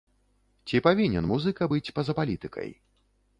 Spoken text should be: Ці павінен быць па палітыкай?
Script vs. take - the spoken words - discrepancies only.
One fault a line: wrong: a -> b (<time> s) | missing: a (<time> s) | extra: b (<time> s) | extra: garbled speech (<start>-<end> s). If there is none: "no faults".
extra: музыка (1.3 s)
extra: за (2.1 s)